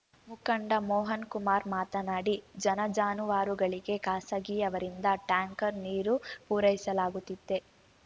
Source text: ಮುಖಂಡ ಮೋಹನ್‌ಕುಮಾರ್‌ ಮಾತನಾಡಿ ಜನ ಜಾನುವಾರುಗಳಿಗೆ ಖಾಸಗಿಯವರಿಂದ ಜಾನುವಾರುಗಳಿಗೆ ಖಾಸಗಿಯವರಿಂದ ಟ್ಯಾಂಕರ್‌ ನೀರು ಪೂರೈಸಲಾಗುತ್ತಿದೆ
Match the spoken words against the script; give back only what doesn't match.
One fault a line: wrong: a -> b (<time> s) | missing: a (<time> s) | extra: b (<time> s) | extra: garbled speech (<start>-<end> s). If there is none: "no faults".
missing: ಜಾನುವಾರುಗಳಿಗೆ ಖಾಸಗಿಯವರಿಂದ (5.1 s)